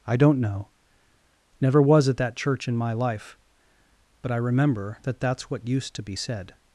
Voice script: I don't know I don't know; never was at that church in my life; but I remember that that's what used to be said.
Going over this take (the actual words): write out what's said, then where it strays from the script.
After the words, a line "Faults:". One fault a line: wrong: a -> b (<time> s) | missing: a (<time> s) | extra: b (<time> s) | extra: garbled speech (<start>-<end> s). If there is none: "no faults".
I don't know; never was at that church in my life; but I remember that that's what used to be said.
Faults:
missing: I don't know (0.7 s)